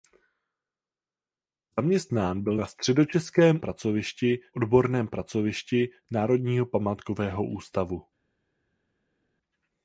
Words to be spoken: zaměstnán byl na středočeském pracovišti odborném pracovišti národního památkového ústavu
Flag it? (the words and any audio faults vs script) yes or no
no